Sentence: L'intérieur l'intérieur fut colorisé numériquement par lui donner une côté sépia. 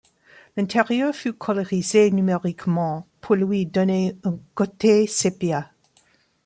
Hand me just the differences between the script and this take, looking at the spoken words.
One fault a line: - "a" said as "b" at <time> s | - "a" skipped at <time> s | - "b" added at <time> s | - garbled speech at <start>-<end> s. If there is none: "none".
- "l'intérieur" skipped at 1.1 s
- "par" said as "pour" at 3.2 s
- "une" said as "un" at 4.2 s